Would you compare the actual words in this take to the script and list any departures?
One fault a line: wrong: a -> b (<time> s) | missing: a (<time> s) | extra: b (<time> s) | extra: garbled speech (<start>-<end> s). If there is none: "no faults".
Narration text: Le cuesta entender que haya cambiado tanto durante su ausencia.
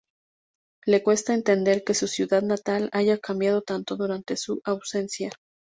extra: su ciudad natal (1.9 s)